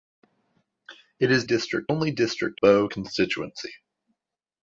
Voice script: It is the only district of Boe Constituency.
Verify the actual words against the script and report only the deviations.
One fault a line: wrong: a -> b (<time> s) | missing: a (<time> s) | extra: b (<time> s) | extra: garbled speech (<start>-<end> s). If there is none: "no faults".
wrong: the -> district (1.4 s)
missing: of (2.6 s)